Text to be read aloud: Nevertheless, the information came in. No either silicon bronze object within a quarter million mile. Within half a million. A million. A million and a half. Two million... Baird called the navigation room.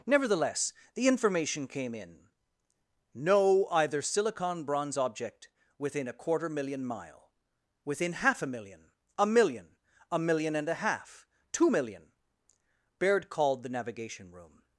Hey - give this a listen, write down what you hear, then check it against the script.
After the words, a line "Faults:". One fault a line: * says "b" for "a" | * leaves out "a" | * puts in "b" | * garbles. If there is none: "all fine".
Nevertheless, the information came in. No either silicon bronze object within a quarter million mile. Within half a million. A million. A million and a half. Two million... Baird called the navigation room.
Faults:
all fine